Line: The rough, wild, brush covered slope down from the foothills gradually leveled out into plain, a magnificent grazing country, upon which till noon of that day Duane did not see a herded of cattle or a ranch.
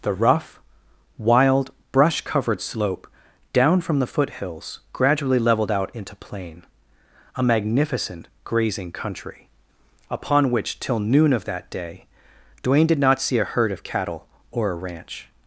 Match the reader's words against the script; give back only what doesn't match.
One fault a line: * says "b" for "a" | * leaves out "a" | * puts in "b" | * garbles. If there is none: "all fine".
* says "herd" for "herded"